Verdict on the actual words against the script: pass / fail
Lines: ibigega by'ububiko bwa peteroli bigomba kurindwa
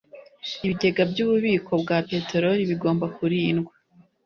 pass